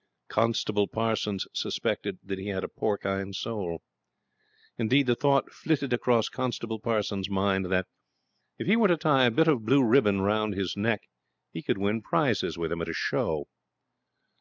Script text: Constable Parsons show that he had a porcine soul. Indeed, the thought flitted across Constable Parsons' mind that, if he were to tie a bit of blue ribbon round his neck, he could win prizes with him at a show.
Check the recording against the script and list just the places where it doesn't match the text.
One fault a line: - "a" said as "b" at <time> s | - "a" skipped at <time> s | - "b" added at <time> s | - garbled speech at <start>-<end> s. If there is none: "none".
- "show" said as "suspected" at 1.5 s